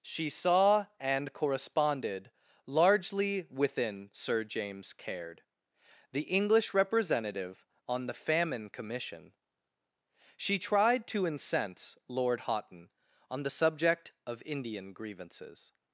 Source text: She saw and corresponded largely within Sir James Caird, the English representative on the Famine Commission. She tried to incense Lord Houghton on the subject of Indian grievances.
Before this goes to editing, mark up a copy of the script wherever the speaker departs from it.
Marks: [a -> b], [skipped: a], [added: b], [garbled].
She saw and corresponded largely within Sir James Caird, the English representative on the Famine Commission. She tried to incense Lord Houghton on the subject of Indian grievances.